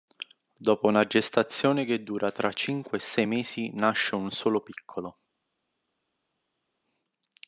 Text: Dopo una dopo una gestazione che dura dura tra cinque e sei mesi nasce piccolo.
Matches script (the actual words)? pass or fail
fail